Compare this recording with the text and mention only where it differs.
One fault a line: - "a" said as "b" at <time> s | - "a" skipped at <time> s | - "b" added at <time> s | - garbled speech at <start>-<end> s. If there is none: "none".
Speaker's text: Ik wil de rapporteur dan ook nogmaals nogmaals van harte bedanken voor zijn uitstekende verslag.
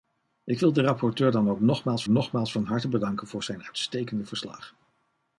none